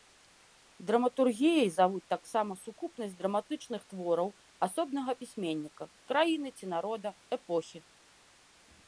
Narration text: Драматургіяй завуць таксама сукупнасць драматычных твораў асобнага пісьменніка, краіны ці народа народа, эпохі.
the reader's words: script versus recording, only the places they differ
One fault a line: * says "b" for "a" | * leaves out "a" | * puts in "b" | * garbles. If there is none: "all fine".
* leaves out "народа"